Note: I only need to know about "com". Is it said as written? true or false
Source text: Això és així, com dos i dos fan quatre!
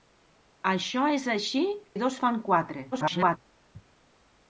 false